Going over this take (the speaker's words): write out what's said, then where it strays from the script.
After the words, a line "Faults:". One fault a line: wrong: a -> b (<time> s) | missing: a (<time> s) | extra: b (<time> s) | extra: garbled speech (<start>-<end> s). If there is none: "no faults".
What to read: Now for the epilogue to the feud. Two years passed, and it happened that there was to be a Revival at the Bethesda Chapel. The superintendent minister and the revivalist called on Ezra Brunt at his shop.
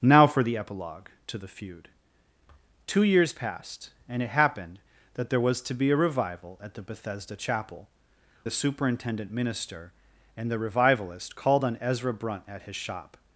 Now for the epilogue to the feud. Two years passed, and it happened that there was to be a Revival at the Bethesda Chapel. The superintendent minister and the revivalist called on Ezra Brunt at his shop.
Faults:
no faults